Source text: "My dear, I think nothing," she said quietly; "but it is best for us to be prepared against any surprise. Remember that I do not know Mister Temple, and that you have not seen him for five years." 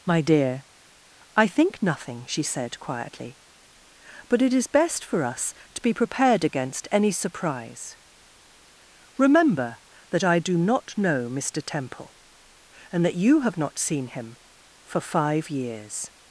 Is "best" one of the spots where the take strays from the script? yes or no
no